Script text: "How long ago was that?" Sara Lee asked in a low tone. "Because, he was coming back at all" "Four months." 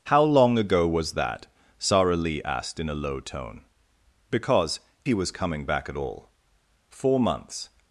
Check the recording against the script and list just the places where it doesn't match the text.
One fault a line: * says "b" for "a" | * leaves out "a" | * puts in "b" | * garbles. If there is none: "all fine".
all fine